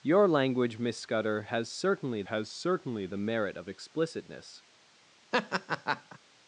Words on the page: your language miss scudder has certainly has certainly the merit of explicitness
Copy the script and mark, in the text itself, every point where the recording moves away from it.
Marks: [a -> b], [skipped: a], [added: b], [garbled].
your language miss scudder has certainly has certainly the merit of explicitness